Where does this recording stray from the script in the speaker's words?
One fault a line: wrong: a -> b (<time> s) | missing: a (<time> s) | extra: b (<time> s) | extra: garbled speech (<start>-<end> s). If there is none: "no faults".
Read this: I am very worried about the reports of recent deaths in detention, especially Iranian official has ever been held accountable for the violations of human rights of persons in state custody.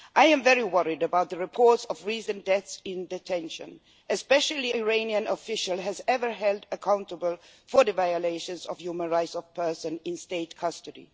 no faults